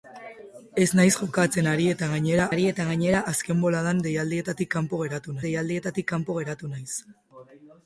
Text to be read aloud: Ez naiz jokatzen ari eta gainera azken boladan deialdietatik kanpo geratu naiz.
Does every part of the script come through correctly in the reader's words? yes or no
no